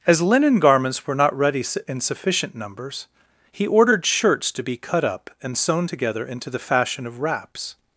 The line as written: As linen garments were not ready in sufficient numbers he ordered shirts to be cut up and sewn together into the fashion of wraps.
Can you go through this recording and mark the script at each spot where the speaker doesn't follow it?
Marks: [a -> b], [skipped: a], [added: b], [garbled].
As linen garments were not ready in sufficient numbers he ordered shirts to be cut up and sewn together into the fashion of wraps.